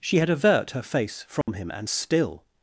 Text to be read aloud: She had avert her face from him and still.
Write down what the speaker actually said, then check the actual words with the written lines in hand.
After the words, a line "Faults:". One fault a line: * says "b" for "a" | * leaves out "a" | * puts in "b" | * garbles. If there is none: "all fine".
She had avert her face from him and still.
Faults:
all fine